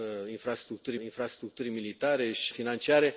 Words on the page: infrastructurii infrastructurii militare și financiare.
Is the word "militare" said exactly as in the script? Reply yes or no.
yes